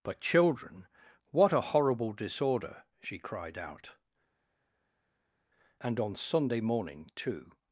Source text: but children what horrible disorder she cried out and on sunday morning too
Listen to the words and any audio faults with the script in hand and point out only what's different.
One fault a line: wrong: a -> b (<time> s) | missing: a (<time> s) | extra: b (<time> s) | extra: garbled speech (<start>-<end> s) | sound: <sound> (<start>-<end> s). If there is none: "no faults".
extra: a (1.5 s)